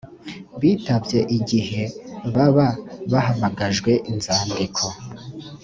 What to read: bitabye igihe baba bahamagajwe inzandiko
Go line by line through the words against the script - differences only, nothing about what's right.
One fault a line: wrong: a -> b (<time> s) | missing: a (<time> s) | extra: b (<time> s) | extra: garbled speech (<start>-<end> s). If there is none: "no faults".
no faults